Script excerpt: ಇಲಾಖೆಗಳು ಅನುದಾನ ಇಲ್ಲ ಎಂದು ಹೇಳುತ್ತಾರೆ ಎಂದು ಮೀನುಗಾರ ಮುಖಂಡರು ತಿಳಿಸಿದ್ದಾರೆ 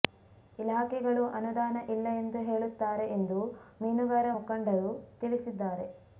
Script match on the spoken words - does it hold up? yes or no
yes